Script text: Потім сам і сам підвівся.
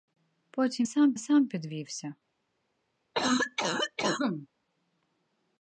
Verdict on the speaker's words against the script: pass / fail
pass